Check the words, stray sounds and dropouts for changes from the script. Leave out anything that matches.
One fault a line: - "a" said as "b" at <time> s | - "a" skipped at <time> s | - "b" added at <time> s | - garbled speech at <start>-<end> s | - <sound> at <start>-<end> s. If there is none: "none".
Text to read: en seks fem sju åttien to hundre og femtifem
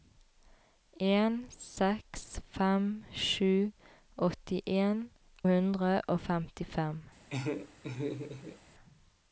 - "to" skipped at 5.0 s
- laugh at 7.3-8.6 s